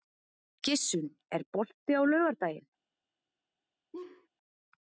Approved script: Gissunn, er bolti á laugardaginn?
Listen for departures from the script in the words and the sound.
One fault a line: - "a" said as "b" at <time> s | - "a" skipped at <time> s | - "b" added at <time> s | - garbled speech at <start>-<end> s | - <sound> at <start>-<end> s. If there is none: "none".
- laugh at 3.9-4.3 s